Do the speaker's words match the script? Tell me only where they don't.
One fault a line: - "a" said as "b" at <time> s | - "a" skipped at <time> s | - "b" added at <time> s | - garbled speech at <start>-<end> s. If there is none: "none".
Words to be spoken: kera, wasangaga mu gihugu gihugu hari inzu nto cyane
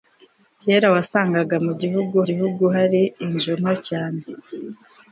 none